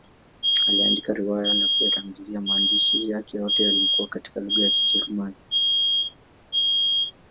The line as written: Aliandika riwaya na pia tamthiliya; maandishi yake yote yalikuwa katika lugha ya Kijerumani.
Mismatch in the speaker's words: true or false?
false